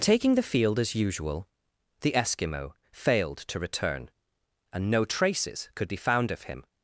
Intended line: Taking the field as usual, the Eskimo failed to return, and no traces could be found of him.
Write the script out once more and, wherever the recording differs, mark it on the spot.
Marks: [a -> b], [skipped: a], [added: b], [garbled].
Taking the field as usual, the Eskimo failed to return, and no traces could be found of him.